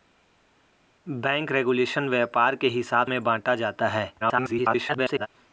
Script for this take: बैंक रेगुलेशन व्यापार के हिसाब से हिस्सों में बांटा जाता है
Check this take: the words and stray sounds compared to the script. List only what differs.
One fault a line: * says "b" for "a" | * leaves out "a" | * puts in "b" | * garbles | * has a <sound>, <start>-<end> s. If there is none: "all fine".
* leaves out "से हिस्सों"
* garbles